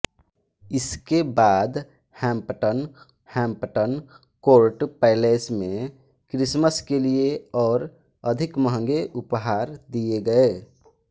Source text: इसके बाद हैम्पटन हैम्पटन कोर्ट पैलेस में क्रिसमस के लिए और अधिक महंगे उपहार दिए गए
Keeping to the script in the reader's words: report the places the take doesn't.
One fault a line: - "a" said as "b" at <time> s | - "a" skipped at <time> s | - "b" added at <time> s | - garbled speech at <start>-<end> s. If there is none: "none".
none